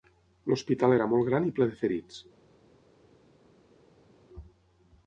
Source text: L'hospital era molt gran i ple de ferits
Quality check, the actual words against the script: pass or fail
pass